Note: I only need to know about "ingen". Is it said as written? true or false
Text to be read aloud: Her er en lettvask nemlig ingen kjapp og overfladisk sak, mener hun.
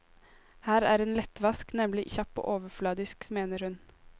false